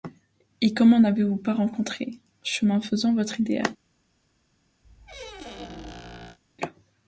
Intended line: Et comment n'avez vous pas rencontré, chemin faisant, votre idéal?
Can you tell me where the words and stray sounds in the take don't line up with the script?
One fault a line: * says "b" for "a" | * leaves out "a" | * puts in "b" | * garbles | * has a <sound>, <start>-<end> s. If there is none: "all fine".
* has a squeak, 4.8-6.4 s